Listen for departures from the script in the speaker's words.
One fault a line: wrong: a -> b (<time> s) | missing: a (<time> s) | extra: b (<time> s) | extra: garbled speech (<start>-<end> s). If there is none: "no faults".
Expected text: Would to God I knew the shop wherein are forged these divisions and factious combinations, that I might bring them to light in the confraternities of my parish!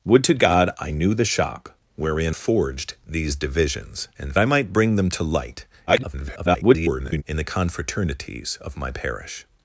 missing: are (2.4 s)
missing: factious combinations that (4.4 s)
extra: garbled speech (5.9-7.2 s)